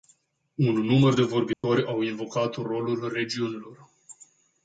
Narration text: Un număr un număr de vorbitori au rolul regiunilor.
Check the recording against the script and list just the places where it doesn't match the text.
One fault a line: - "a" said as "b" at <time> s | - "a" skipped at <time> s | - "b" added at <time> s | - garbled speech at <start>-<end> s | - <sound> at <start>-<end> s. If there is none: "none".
- "un număr" skipped at 1.1 s
- dropout at 1.5-1.6 s
- "invocat" added at 2.0 s